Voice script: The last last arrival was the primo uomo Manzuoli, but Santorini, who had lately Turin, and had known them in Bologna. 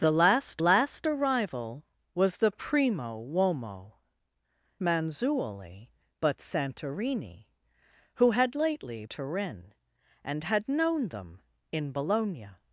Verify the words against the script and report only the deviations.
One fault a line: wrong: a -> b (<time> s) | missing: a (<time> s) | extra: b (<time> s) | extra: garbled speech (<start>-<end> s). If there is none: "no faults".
no faults